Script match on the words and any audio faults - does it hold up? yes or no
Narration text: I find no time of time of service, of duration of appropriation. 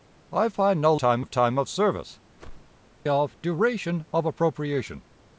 no